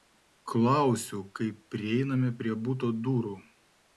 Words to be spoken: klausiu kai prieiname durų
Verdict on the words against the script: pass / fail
fail